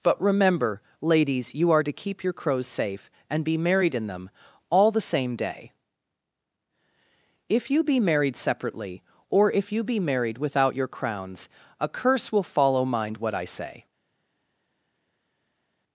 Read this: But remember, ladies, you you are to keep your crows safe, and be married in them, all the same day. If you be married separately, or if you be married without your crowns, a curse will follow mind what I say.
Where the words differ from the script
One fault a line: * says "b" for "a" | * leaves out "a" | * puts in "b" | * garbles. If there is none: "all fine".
* leaves out "you"